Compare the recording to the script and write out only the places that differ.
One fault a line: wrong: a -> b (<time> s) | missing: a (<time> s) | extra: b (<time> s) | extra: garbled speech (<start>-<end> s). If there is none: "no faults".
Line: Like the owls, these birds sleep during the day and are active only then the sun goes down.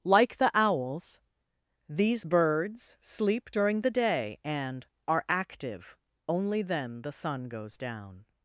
no faults